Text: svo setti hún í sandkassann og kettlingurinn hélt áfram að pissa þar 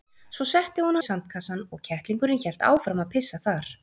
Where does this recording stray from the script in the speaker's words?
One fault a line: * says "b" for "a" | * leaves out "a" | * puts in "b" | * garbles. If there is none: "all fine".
all fine